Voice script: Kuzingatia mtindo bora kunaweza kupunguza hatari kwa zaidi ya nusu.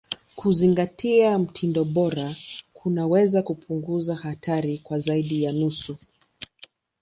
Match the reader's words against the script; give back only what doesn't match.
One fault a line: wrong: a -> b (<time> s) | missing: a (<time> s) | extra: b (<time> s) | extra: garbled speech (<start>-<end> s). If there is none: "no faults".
no faults